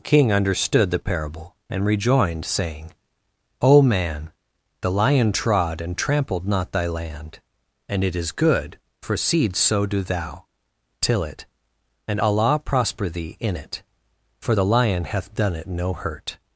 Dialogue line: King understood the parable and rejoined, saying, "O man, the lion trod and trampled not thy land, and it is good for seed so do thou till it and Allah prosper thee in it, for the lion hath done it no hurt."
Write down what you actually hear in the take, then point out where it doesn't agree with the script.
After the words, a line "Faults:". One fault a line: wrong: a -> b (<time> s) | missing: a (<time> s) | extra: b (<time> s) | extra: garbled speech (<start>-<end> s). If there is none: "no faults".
King understood the parable and rejoined, saying, "O man, the lion trod and trampled not thy land, and it is good for seed so do thou till it and Allah prosper thee in it, for the lion hath done it no hurt."
Faults:
no faults